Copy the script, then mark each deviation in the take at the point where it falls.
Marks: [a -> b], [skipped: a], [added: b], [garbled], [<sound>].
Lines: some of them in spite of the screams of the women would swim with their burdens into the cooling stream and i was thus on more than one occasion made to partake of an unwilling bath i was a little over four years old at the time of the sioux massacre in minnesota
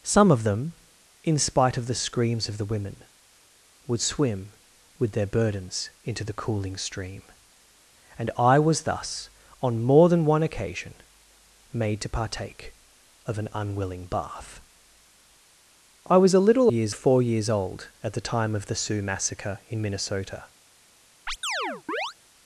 some of them in spite of the screams of the women would swim with their burdens into the cooling stream and i was thus on more than one occasion made to partake of an unwilling bath i was a little [over -> years] four years old at the time of the sioux massacre in minnesota [chirp]